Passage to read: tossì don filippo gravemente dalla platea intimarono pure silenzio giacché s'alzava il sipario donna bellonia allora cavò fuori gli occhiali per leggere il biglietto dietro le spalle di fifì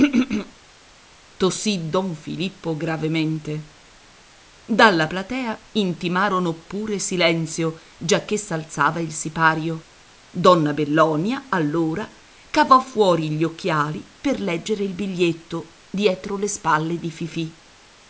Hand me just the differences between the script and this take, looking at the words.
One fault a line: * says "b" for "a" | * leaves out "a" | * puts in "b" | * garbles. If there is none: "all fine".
all fine